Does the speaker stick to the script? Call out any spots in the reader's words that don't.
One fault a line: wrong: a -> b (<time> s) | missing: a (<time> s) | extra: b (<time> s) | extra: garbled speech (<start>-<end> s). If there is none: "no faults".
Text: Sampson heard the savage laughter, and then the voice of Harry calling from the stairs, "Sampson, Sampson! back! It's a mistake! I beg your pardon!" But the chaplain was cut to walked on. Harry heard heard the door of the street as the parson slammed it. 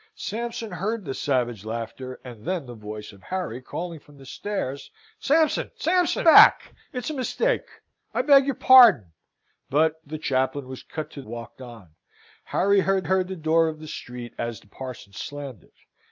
no faults